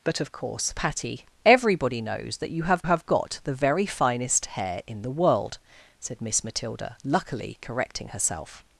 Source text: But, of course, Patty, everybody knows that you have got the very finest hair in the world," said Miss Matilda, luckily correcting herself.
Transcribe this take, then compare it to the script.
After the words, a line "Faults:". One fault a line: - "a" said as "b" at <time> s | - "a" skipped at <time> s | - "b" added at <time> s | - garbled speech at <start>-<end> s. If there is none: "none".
But, of course, Patty, everybody knows that you have have got the very finest hair in the world," said Miss Matilda, luckily correcting herself.
Faults:
- "have" added at 2.8 s